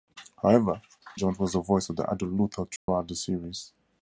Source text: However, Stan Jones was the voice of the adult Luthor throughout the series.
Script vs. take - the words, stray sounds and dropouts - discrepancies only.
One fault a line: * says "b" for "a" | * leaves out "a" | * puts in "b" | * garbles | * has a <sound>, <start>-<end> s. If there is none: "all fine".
* leaves out "Stan"
* has a dropout, 2.8-2.9 s